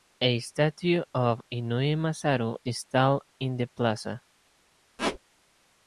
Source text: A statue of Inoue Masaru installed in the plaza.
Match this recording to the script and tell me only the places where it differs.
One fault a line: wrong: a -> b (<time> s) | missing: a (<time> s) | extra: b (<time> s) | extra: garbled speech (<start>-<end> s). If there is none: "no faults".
no faults